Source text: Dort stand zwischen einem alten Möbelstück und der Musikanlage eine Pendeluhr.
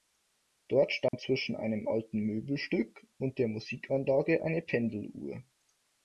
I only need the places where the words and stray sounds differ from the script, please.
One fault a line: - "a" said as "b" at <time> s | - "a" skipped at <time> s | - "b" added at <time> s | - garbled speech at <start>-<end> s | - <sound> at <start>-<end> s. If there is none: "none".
- dropout at 1.1-1.1 s